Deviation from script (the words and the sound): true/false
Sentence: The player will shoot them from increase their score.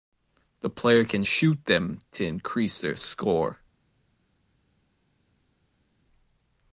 true